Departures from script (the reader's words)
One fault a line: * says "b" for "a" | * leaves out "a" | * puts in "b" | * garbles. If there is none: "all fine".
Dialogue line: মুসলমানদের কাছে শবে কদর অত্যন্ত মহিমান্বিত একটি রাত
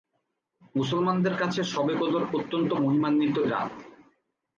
* leaves out "একটি"